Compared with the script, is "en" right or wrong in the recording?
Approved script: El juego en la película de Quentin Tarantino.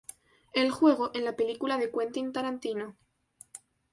right